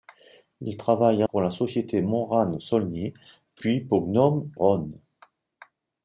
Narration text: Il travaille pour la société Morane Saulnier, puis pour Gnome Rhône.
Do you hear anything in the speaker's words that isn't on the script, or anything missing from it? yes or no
no